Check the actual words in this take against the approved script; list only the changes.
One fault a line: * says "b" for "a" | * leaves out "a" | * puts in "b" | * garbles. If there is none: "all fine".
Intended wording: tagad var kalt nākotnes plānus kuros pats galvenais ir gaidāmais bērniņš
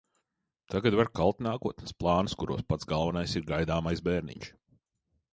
all fine